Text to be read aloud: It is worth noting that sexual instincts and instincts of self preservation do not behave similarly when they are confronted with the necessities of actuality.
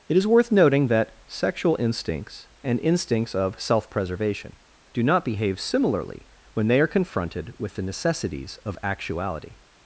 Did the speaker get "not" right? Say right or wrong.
right